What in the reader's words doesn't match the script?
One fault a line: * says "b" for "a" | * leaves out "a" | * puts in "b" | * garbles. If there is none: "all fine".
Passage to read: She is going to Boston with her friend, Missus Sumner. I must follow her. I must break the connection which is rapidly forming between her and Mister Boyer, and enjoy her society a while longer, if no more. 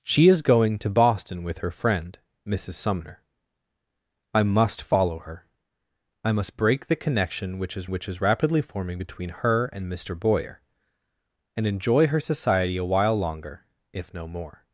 * puts in "which is"